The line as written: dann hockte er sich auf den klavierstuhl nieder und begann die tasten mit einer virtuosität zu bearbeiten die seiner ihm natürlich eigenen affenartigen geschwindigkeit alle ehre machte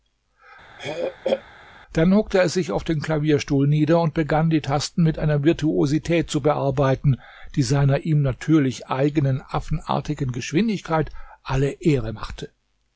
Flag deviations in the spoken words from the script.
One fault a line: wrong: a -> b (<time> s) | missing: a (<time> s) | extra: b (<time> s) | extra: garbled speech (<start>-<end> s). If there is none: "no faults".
no faults